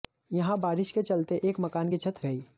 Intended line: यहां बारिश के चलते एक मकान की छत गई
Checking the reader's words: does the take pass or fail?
pass